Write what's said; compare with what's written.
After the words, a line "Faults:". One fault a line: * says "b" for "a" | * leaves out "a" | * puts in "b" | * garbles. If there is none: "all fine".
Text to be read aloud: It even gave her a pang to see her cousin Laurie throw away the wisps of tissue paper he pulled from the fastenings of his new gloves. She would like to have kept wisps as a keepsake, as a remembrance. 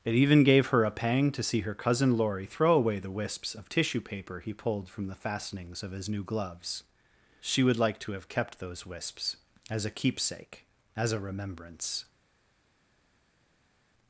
It even gave her a pang to see her cousin Laurie throw away the wisps of tissue paper he pulled from the fastenings of his new gloves. She would like to have kept those wisps as a keepsake, as a remembrance.
Faults:
* puts in "those"